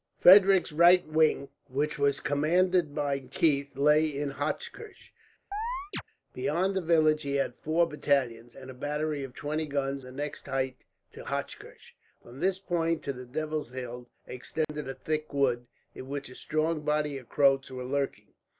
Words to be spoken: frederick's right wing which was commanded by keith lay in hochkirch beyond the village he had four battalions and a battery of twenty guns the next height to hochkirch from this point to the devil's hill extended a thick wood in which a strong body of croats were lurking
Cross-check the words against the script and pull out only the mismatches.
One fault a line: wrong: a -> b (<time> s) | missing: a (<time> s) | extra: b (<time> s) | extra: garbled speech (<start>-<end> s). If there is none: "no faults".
no faults